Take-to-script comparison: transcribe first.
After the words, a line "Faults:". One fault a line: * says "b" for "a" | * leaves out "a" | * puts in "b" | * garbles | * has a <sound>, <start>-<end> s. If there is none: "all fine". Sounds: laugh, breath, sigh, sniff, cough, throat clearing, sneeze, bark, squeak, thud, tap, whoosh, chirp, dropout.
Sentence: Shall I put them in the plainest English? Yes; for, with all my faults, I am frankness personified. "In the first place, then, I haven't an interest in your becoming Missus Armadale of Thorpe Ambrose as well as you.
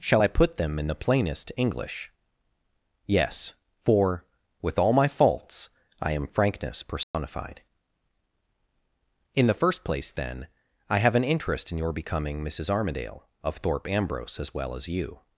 Shall I put them in the plainest English? Yes; for, with all my faults, I am frankness personified. "In the first place, then, I have an interest in your becoming Missus Armadale of Thorpe Ambrose as well as you.
Faults:
* has a dropout, 7.0-7.1 s
* says "have" for "haven't"